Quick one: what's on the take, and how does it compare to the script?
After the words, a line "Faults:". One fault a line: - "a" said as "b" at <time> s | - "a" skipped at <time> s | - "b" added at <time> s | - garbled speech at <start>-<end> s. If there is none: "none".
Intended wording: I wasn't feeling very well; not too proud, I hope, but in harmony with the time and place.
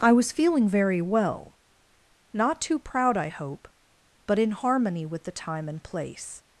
I was feeling very well; not too proud, I hope, but in harmony with the time and place.
Faults:
- "wasn't" said as "was" at 0.1 s